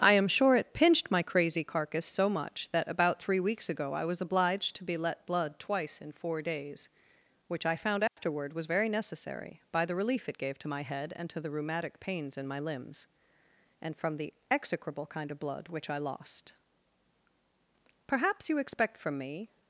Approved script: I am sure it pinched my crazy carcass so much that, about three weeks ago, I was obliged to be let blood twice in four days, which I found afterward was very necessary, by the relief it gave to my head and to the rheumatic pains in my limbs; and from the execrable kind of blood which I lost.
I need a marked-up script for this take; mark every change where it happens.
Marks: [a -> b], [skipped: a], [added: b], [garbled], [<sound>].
I am sure it pinched my crazy carcass so much that, about three weeks ago, I was obliged to be let blood twice in four days, which I found afterward [dropout] was very necessary, by the relief it gave to my head and to the rheumatic pains in my limbs; and from the execrable kind of blood which I lost. [added: Perhaps you expect from me]